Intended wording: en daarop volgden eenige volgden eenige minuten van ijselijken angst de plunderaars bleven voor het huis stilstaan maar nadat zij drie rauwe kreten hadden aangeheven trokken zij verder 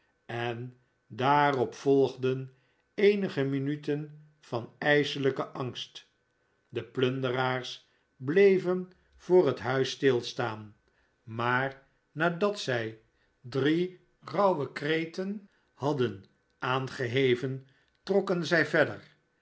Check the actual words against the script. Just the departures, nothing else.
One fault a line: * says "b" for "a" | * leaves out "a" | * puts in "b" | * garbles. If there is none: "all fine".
* leaves out "volgden eenige"